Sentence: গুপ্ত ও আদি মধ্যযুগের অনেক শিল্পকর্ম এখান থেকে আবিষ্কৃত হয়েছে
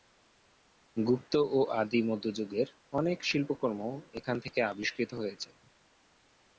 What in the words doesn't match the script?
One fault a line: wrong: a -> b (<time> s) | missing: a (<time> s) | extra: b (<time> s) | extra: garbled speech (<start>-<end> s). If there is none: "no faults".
no faults